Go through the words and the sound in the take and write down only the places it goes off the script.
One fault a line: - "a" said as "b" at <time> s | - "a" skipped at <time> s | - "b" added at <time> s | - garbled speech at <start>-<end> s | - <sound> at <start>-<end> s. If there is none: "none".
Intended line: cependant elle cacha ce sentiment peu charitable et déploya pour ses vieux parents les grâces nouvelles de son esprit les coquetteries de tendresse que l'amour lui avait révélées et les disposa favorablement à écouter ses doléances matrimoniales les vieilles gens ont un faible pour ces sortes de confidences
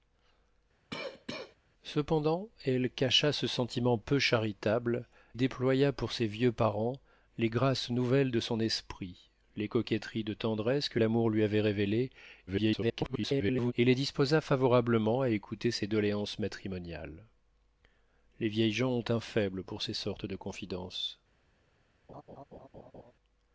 - cough at 0.9-1.6 s
- "et" skipped at 5.1 s
- garbled speech at 12.5-13.7 s
- laugh at 22.1-23.1 s